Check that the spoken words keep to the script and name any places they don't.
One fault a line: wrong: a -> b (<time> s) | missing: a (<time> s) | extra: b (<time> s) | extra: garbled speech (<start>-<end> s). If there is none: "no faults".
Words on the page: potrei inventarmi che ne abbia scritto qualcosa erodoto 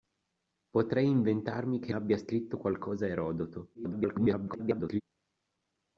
missing: ne (1.9 s)
extra: garbled speech (3.7-5.0 s)